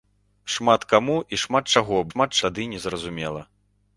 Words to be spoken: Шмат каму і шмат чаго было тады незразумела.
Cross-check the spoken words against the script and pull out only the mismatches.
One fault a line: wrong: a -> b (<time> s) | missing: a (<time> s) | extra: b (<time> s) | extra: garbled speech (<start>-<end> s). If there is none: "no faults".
wrong: было -> шмат (2.1 s)